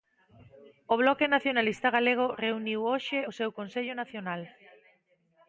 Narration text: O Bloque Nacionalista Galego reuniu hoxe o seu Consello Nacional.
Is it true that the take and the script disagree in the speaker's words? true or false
false